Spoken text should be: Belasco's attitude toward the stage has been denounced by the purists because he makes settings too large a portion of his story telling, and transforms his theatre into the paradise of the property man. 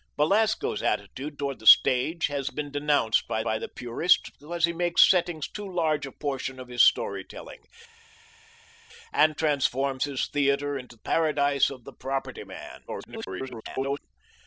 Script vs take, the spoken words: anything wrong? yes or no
yes